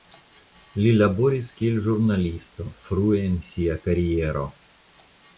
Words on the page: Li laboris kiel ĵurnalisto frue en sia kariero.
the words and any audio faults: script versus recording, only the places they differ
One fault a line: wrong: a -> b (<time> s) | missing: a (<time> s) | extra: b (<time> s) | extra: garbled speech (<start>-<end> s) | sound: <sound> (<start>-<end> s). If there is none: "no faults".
no faults